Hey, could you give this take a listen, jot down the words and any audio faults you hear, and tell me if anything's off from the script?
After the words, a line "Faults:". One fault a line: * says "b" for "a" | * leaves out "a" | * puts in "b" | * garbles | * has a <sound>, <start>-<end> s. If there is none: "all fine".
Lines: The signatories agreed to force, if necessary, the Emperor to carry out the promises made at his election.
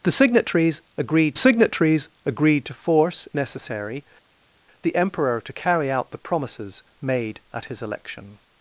The signatories agreed signatories agreed to force, necessary, the Emperor to carry out the promises made at his election.
Faults:
* puts in "signatories agreed"
* leaves out "if"